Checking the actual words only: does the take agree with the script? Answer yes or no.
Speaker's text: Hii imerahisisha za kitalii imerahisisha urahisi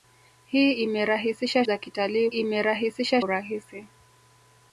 yes